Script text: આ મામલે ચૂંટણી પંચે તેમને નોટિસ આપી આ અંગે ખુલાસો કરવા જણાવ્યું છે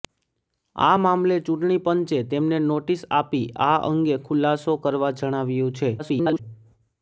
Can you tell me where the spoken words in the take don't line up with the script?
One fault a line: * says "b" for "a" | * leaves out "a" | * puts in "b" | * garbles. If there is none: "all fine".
* garbles